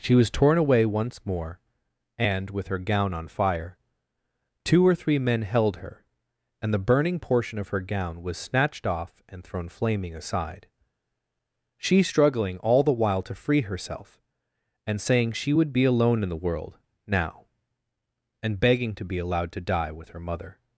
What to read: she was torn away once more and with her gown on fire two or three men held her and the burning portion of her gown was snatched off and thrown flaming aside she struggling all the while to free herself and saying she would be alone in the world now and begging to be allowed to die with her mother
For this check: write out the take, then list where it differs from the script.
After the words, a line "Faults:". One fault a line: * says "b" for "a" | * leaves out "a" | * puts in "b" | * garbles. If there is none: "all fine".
she was torn away once more and with her gown on fire two or three men held her and the burning portion of her gown was snatched off and thrown flaming aside she struggling all the while to free herself and saying she would be alone in the world now and begging to be allowed to die with her mother
Faults:
all fine